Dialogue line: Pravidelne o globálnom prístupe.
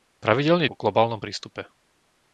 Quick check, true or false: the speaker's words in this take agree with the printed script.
true